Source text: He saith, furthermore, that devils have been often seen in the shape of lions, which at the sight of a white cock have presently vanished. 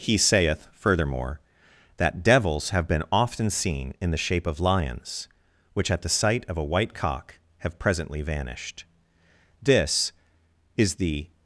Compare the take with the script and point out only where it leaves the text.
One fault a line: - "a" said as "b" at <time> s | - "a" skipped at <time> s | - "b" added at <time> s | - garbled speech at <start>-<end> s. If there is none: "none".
- "This is the" added at 9.6 s